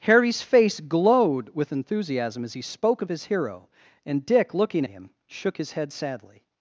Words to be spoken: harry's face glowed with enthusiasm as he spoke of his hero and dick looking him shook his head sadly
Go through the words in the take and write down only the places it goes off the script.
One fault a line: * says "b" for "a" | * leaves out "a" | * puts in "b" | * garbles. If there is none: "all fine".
all fine